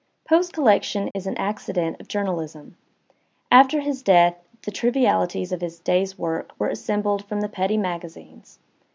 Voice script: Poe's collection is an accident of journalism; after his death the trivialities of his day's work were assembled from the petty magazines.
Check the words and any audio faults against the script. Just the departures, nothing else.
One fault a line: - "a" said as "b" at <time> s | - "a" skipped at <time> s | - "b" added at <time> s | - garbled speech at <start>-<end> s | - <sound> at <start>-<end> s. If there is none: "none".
- dropout at 1.1-1.2 s